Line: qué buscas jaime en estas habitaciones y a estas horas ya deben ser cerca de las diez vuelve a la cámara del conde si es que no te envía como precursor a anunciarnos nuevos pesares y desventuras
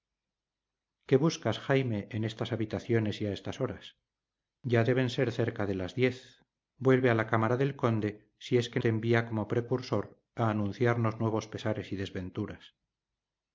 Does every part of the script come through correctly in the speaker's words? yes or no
no